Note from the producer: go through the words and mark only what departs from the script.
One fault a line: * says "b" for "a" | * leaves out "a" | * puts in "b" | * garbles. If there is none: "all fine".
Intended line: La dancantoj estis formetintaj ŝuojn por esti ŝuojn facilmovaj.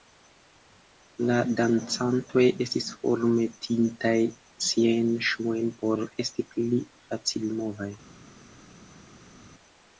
* puts in "siajn"
* says "pli" for "ŝuojn"